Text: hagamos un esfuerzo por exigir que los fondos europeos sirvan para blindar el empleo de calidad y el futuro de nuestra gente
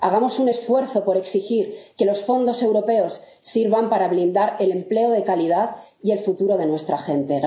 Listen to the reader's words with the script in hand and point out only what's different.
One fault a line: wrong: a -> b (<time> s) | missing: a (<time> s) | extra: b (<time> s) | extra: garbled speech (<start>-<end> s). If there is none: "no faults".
no faults